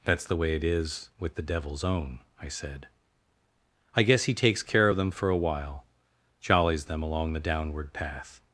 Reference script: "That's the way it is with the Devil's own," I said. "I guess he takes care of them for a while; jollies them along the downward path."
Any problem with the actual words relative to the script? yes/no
no